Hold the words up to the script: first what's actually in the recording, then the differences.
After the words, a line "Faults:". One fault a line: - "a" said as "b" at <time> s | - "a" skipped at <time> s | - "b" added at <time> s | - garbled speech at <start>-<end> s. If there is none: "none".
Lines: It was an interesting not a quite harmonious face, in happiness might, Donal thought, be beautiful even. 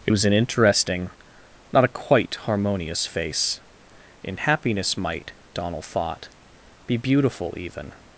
It was an interesting not a quite harmonious face, in happiness might, Donal thought, be beautiful even.
Faults:
none